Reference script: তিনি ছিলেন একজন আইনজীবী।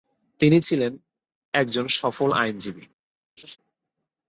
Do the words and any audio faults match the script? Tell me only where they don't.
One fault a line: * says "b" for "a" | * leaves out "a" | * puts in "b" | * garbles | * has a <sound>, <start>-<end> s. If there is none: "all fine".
* puts in "সফল"
* has a laugh, 3.4-3.6 s